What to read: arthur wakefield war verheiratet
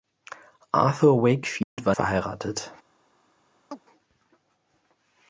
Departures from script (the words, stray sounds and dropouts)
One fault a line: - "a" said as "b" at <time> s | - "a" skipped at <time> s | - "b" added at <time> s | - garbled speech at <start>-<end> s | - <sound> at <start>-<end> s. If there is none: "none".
- dropout at 1.6-1.8 s
- chirp at 3.7-3.8 s